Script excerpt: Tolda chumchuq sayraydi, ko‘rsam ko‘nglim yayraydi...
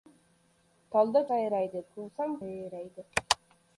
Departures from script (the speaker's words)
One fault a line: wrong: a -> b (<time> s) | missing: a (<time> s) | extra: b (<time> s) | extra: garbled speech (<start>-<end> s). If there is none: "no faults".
missing: chumchuq (1.2 s)
missing: ko‘nglim (2.4 s)